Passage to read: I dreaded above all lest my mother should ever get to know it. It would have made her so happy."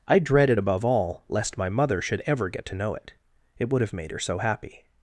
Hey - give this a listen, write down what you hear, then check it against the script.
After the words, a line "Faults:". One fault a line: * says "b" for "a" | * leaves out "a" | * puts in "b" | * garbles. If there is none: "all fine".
I dreaded above all lest my mother should ever get to know it. It would have made her so happy."
Faults:
all fine